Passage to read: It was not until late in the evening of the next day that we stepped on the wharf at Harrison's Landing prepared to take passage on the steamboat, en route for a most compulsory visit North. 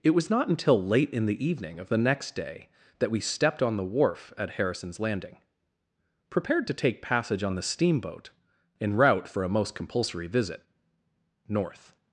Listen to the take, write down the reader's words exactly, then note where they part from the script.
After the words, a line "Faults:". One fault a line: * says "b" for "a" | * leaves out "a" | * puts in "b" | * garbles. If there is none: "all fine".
It was not until late in the evening of the next day that we stepped on the wharf at Harrison's Landing prepared to take passage on the steamboat, en route for a most compulsory visit North.
Faults:
all fine